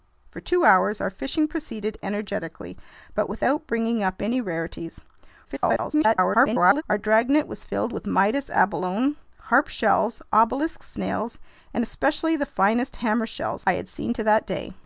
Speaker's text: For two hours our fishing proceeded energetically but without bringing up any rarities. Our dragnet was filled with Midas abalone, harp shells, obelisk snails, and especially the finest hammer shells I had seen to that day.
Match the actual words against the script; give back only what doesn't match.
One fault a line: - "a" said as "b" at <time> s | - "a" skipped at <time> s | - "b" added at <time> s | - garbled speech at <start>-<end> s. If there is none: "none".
- garbled speech at 5.4-6.8 s